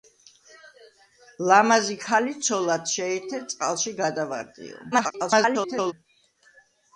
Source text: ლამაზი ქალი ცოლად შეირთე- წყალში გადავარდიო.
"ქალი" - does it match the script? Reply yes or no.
yes